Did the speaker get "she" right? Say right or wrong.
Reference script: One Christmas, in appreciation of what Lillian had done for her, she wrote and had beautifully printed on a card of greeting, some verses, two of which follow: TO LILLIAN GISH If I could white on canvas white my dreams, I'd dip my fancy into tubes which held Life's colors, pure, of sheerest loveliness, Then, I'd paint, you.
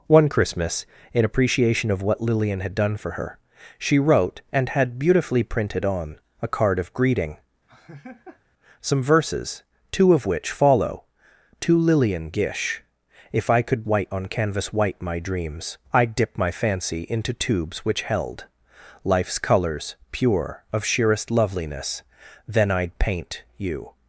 right